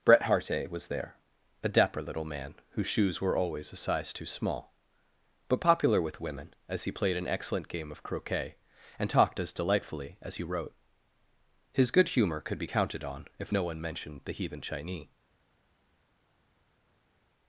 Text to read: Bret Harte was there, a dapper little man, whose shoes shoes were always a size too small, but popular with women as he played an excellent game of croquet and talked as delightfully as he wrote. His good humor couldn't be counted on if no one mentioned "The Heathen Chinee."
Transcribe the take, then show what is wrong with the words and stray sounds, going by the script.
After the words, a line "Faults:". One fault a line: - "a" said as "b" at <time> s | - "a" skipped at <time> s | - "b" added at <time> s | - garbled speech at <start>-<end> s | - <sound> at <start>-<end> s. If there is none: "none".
Bret Harte was there, a dapper little man, whose shoes were always a size too small, but popular with women as he played an excellent game of croquet and talked as delightfully as he wrote. His good humor could be counted on if no one mentioned "The Heathen Chinee."
Faults:
- "shoes" skipped at 3.2 s
- "couldn't" said as "could" at 12.4 s